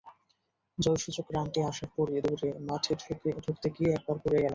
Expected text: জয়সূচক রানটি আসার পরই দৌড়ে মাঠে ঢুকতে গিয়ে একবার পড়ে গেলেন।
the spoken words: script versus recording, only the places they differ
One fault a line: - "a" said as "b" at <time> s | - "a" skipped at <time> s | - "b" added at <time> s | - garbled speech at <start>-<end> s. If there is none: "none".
none